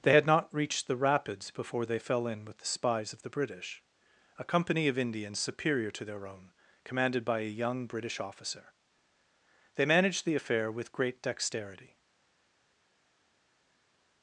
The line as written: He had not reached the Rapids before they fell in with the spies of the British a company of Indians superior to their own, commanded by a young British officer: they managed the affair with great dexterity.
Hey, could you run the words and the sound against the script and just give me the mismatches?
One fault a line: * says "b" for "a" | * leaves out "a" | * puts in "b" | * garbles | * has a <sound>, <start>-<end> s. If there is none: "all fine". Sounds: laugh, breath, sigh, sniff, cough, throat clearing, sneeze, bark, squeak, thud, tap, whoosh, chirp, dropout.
* says "They" for "He"